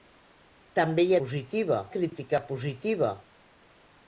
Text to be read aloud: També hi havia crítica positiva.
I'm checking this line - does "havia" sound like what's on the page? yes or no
no